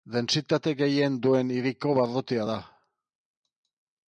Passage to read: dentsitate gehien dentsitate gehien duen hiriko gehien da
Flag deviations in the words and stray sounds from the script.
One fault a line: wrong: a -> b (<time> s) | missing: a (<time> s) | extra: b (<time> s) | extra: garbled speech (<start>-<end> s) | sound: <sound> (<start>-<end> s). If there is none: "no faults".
missing: dentsitate gehien (1.2 s)
wrong: gehien -> barrutia (1.9 s)